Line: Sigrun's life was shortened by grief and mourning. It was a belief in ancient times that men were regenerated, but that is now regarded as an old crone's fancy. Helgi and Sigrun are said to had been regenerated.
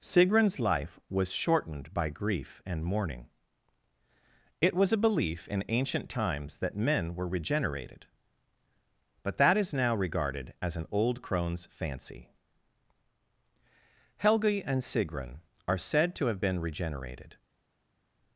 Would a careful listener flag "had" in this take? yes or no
yes